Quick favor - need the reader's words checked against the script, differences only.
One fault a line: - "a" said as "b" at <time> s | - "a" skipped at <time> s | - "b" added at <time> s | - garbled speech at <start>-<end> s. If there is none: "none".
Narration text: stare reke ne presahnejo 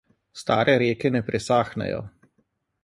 none